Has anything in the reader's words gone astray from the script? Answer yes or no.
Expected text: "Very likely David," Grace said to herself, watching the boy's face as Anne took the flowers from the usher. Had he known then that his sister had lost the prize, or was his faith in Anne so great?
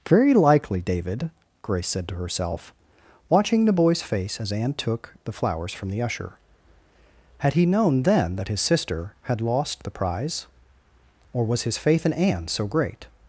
no